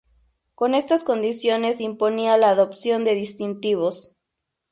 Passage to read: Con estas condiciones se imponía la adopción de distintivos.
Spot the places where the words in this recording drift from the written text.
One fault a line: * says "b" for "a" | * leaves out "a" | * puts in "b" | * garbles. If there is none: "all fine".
all fine